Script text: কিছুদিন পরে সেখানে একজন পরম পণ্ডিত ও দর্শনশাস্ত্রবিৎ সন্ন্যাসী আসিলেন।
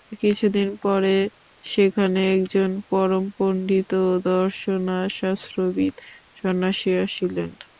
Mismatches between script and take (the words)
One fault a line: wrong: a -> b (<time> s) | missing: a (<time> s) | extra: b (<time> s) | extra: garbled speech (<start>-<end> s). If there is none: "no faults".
no faults